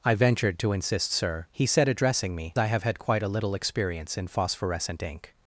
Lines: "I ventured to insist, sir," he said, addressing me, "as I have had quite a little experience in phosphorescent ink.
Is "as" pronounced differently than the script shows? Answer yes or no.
yes